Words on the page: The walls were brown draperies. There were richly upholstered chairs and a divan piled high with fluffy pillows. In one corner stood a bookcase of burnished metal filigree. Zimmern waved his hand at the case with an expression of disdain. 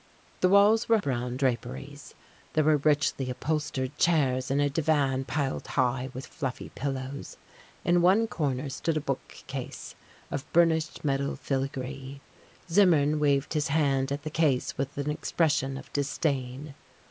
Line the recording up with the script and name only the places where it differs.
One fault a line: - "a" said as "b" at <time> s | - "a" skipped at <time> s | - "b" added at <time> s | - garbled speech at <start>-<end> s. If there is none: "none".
none